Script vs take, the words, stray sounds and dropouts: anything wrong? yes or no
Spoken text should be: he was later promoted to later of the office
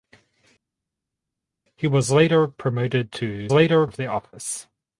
no